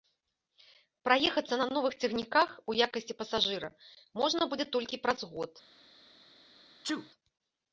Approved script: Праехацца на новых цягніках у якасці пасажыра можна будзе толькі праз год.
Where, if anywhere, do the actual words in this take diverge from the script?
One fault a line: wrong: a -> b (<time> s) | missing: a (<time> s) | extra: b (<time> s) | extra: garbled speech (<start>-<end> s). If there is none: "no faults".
no faults